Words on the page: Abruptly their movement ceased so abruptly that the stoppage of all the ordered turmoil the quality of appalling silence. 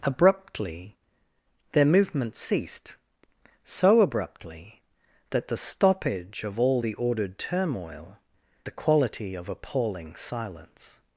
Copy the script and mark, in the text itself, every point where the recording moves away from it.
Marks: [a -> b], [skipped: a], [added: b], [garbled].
Abruptly their movement ceased so abruptly that the stoppage of all the ordered turmoil the quality of appalling silence.